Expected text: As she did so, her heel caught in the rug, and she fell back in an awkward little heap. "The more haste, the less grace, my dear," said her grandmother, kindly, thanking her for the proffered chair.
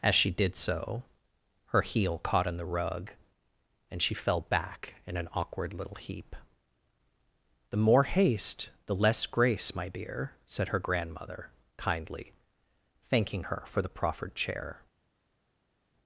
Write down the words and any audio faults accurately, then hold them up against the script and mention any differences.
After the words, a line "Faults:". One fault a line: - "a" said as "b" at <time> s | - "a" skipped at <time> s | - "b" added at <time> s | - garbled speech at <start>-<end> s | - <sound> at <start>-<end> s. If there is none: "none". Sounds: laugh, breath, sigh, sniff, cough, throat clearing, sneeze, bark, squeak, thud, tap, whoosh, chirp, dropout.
As she did so, her heel caught in the rug, and she fell back in an awkward little heap. "The more haste, the less grace, my dear," said her grandmother, kindly, thanking her for the proffered chair.
Faults:
none